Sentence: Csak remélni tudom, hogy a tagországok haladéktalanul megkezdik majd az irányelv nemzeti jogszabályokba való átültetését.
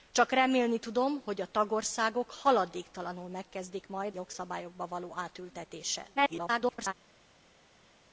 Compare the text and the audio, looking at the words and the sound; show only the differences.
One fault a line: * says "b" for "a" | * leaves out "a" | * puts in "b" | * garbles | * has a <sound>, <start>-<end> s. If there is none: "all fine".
* leaves out "az irányelv nemzeti"
* garbles